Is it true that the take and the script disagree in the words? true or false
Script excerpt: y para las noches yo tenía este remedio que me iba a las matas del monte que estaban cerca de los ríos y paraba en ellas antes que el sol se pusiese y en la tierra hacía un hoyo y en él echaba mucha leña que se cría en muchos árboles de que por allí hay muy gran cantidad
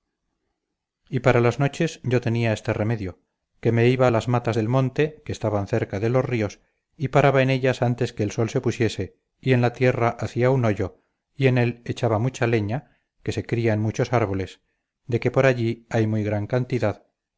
false